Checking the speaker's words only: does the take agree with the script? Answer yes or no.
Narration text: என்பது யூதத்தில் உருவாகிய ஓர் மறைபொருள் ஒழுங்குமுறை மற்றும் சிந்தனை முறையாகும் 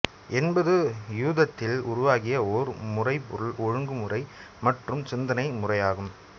yes